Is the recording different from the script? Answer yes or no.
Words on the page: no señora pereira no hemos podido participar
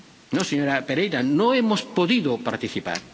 no